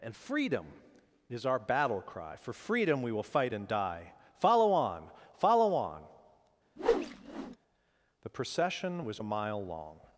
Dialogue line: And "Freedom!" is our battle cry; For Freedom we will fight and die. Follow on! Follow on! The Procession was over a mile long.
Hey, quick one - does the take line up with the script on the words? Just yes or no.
no